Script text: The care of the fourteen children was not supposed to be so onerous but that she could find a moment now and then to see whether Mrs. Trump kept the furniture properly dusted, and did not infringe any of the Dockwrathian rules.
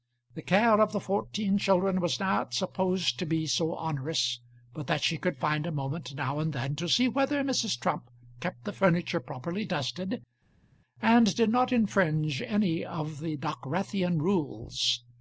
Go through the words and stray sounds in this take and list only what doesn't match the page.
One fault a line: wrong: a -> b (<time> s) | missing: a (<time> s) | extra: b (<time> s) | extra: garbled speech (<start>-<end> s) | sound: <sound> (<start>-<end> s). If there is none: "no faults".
no faults